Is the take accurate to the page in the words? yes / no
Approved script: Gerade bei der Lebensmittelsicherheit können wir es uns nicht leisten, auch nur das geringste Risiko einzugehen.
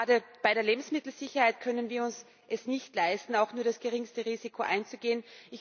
yes